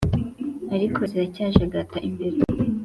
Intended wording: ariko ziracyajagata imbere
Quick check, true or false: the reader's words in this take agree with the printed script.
true